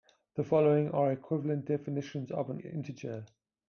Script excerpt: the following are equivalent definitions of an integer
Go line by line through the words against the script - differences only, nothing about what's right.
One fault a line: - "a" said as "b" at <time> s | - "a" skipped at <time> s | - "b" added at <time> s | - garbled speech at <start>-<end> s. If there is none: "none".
none